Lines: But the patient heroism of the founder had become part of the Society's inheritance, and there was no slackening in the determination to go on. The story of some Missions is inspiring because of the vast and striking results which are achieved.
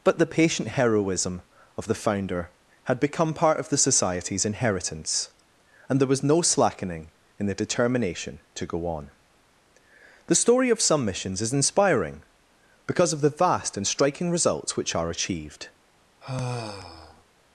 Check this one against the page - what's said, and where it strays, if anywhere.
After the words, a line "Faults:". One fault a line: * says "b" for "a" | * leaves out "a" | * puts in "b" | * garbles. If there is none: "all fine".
But the patient heroism of the founder had become part of the Society's inheritance, and there was no slackening in the determination to go on. The story of some Missions is inspiring because of the vast and striking results which are achieved.
Faults:
all fine